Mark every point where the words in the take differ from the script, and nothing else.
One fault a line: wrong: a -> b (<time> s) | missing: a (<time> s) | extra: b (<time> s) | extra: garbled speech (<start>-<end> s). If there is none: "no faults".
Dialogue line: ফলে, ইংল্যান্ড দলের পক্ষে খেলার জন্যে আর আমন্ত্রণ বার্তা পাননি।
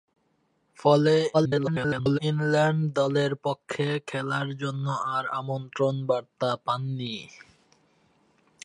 extra: garbled speech (1.3-2.2 s)